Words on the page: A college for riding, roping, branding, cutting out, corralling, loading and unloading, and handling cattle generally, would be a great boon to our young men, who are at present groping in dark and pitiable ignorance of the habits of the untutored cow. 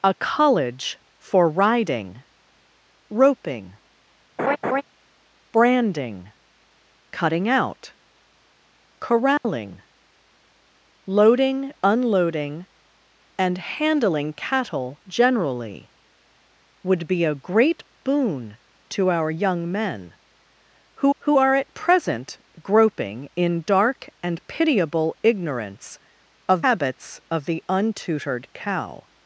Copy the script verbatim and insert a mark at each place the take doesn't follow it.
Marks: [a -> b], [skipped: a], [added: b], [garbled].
A college for riding, roping, branding, cutting out, corralling, loading [skipped: and] unloading, and handling cattle generally, would be a great boon to our young men, who [added: who] are at present groping in dark and pitiable ignorance of [skipped: the] habits of the untutored cow.